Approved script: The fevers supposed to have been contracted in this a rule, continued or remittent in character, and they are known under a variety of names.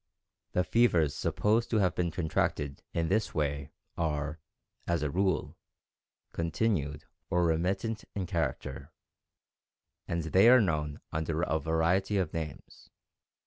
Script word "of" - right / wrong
right